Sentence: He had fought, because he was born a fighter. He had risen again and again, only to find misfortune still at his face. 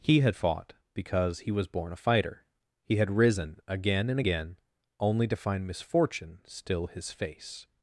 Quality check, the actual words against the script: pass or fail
fail